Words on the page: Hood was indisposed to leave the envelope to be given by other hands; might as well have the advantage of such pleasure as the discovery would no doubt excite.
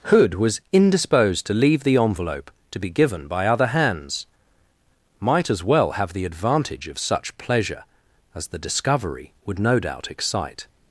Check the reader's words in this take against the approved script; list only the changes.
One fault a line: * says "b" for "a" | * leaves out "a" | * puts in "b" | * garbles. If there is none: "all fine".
all fine